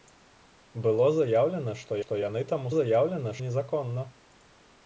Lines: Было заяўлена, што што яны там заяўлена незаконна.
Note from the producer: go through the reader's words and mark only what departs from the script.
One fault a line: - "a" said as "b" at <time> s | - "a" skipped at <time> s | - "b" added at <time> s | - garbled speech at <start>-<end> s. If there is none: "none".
none